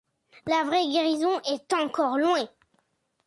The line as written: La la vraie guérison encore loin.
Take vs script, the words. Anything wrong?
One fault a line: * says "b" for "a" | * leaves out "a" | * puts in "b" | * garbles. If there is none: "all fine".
* leaves out "la"
* puts in "est"